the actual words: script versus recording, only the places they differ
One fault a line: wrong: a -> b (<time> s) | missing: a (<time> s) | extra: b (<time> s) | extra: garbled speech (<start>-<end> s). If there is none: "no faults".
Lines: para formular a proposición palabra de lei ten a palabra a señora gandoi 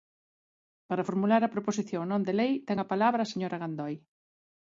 wrong: palabra -> non (2.1 s)